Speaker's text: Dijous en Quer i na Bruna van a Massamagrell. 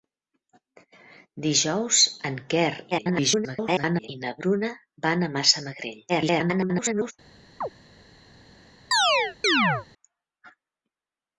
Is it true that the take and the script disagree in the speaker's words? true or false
true